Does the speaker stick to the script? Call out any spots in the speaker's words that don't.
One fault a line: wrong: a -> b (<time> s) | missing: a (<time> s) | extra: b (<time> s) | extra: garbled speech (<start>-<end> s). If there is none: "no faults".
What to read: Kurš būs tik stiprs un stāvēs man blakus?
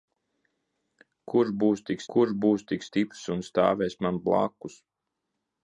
extra: kurš būs tik (2.1 s)